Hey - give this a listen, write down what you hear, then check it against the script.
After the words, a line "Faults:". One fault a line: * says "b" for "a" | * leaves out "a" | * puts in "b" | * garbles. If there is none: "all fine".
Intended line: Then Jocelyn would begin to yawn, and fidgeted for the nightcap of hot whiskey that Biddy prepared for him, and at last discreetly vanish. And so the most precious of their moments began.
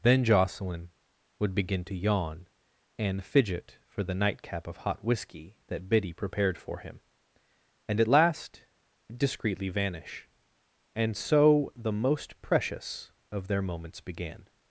Then Jocelyn would begin to yawn, and fidget for the nightcap of hot whiskey that Biddy prepared for him, and at last discreetly vanish. And so the most precious of their moments began.
Faults:
* says "fidget" for "fidgeted"